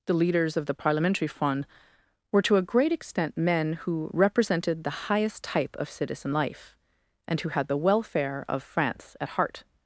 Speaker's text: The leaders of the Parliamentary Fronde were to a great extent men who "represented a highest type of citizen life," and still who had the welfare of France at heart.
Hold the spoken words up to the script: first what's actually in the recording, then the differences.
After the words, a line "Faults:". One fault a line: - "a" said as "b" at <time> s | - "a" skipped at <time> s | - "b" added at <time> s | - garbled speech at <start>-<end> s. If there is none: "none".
The leaders of the Parliamentary Fronde were to a great extent men who "represented the highest type of citizen life," and who had the welfare of France at heart.
Faults:
- "a" said as "the" at 4.8 s
- "still" skipped at 7.4 s